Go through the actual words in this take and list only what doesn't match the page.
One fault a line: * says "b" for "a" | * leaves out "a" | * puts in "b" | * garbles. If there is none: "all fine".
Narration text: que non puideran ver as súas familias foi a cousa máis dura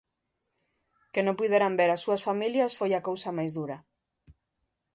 all fine